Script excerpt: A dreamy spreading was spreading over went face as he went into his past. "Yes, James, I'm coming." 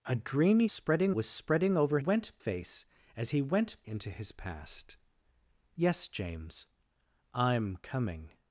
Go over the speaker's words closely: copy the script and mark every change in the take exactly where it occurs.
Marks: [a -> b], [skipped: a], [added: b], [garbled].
A dreamy spreading was spreading over went face as he went into his past. "Yes, James, I'm coming."